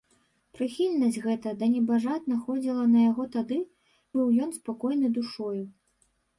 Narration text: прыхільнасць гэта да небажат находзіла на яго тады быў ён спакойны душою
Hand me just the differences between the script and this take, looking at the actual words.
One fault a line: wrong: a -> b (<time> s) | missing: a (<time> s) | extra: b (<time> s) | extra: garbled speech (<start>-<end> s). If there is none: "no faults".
no faults